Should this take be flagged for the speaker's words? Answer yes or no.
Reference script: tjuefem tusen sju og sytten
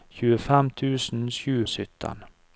no